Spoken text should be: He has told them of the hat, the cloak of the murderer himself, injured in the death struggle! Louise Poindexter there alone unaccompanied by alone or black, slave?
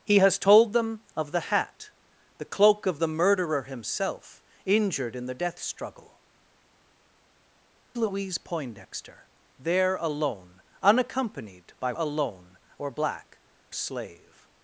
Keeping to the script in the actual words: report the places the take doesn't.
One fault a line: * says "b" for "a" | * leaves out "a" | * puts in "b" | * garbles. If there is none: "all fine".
all fine